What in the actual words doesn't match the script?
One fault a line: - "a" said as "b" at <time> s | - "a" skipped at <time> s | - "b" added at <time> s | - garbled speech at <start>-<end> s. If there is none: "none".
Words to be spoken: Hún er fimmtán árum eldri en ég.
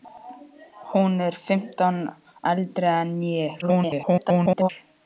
- "árum" skipped at 2.0 s
- garbled speech at 3.6-4.7 s